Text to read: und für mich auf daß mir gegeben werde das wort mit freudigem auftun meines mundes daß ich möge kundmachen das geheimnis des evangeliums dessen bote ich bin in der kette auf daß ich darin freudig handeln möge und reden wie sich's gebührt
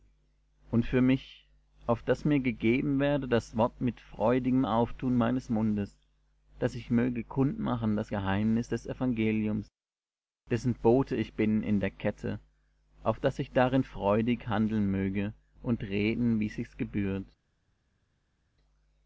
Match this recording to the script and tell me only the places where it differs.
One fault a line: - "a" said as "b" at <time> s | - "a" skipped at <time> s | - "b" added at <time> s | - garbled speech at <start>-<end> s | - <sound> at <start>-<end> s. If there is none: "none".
none